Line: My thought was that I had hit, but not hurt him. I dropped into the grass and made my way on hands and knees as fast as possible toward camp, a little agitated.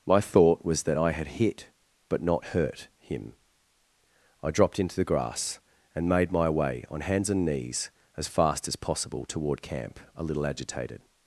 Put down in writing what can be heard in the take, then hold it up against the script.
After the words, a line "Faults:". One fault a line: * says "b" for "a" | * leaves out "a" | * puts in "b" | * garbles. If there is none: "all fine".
My thought was that I had hit, but not hurt him. I dropped into the grass and made my way on hands and knees as fast as possible toward camp, a little agitated.
Faults:
all fine